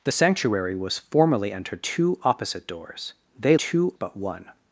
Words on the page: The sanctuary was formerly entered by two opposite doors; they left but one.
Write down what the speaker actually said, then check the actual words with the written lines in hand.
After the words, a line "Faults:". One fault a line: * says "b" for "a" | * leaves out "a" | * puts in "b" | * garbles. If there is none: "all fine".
The sanctuary was formerly entered two opposite doors; they two but one.
Faults:
* leaves out "by"
* says "two" for "left"